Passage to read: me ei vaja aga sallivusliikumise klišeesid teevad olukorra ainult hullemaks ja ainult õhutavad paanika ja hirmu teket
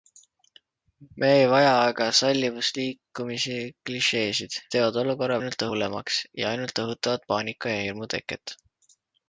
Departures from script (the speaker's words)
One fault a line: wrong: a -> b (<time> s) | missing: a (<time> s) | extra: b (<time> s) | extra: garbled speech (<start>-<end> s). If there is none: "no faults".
no faults